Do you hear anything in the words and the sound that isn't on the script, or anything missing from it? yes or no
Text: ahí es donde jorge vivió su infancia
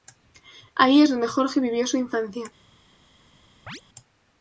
yes